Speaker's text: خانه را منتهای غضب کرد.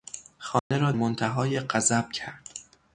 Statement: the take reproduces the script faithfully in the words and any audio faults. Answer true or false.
false